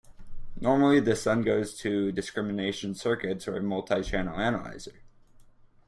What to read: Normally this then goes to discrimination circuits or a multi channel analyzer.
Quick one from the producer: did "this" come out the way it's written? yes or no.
yes